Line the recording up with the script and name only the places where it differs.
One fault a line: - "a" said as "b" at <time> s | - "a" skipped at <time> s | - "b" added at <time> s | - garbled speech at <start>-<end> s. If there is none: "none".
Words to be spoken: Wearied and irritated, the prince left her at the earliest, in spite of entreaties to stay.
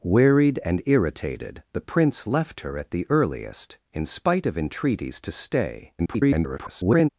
- garbled speech at 6.0-7.1 s